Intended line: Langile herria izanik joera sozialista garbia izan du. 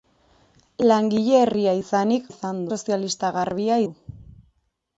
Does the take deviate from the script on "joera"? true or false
true